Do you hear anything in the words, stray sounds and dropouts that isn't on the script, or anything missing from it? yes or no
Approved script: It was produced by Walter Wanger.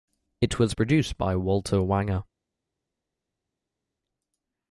no